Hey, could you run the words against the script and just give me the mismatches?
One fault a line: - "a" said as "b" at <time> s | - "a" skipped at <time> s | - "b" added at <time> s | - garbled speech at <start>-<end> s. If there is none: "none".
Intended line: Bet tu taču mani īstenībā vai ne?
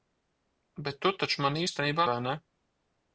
none